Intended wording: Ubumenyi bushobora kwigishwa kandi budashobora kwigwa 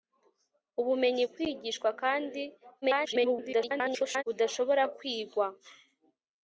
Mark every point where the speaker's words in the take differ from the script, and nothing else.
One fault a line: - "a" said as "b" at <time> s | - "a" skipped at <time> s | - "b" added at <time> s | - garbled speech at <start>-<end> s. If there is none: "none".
- "bushobora" skipped at 1.2 s
- garbled speech at 2.8-4.2 s